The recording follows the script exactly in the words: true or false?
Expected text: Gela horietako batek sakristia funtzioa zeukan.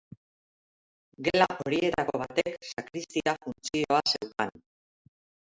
true